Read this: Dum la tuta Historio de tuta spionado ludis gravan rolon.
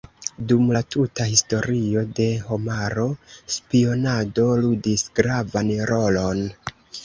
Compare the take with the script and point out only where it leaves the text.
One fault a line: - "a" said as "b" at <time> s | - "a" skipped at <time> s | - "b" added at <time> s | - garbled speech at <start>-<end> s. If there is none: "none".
- "tuta" said as "homaro" at 2.5 s